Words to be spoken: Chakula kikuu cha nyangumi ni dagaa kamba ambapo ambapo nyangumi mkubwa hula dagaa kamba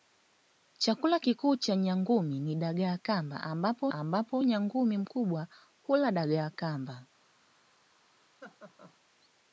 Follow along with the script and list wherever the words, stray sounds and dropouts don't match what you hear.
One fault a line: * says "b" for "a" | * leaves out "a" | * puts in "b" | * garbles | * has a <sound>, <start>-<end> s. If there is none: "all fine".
* has a laugh, 8.4-9.0 s